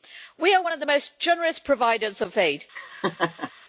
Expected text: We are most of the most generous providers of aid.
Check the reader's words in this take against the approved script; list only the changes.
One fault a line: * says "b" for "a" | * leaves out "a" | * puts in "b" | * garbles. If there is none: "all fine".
* says "one" for "most"